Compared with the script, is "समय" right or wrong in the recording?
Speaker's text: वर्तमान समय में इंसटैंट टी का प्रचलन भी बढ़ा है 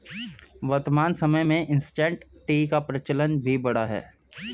right